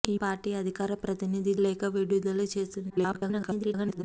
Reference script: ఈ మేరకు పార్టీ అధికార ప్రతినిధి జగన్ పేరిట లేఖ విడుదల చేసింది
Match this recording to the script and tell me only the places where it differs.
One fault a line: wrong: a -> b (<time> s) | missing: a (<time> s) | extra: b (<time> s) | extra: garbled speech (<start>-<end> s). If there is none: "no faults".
missing: మేరకు (0.1 s)
missing: జగన్ పేరిట (1.5 s)
extra: garbled speech (2.9-4.0 s)